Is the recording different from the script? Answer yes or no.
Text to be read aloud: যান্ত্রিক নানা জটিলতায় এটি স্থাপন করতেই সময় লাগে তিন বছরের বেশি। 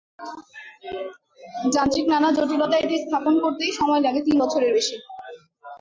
no